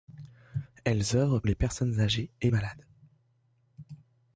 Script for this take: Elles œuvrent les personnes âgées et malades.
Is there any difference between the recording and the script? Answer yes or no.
no